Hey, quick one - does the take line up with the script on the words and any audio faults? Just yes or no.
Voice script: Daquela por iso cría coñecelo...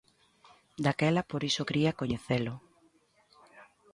yes